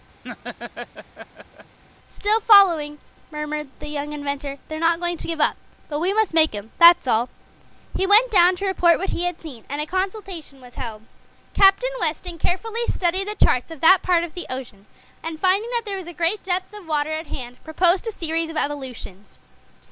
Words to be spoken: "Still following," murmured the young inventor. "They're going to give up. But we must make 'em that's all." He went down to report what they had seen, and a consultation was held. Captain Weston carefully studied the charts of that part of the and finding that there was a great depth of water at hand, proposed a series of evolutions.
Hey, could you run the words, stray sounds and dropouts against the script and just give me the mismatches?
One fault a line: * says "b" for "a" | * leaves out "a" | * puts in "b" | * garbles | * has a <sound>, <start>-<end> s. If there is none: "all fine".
* has a laugh, 0.2-1.8 s
* puts in "not"
* says "he" for "they"
* puts in "ocean"